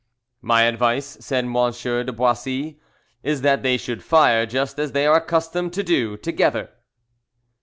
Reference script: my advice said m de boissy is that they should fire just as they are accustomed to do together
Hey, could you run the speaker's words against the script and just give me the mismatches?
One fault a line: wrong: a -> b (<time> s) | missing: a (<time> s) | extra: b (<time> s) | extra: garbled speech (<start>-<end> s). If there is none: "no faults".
no faults